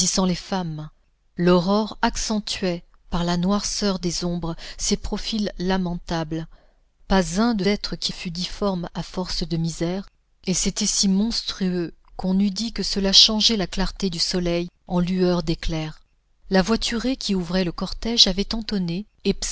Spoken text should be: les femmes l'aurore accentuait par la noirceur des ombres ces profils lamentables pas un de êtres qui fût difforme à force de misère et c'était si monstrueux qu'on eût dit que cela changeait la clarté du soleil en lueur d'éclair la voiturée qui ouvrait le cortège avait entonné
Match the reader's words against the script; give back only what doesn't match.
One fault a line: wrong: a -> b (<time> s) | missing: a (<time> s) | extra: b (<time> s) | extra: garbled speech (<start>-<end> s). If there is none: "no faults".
no faults